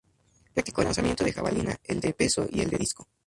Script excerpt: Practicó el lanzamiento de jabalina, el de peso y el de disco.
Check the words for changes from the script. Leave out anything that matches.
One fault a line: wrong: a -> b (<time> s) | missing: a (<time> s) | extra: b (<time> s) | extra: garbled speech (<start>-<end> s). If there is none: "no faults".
no faults